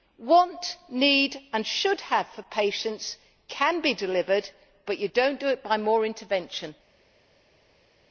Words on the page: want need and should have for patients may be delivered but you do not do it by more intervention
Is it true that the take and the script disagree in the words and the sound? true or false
true